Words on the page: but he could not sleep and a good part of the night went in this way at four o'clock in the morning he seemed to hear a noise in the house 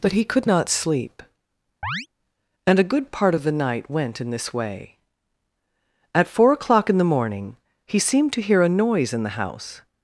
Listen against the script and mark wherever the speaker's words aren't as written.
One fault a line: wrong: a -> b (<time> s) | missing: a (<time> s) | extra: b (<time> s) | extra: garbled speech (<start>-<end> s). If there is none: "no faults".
no faults